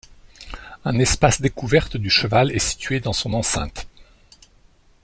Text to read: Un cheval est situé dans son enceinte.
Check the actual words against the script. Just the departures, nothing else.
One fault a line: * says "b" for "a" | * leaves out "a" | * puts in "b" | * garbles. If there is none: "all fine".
* puts in "espace découverte du"